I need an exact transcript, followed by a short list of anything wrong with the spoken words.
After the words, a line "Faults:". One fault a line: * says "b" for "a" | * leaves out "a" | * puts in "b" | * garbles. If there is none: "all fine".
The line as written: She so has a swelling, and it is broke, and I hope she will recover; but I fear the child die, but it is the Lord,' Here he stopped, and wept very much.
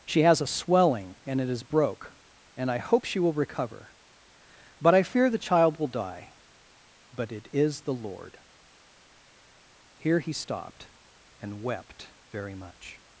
She has a swelling, and it is broke, and I hope she will recover; but I fear the child will die, but it is the Lord,' Here he stopped, and wept very much.
Faults:
* leaves out "so"
* puts in "will"